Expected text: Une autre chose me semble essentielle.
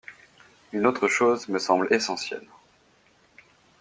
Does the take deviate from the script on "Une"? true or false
false